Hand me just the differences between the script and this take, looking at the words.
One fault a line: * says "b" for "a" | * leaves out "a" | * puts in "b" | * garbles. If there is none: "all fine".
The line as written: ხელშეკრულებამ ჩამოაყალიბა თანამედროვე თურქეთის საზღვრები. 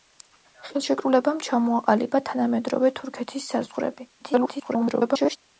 * garbles